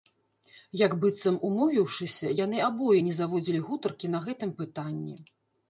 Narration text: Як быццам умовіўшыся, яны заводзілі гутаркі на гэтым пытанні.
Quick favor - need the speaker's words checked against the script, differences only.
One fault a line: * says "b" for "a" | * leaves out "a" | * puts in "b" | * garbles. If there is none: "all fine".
* puts in "абое не"